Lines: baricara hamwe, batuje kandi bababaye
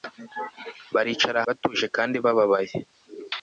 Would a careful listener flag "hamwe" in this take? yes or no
yes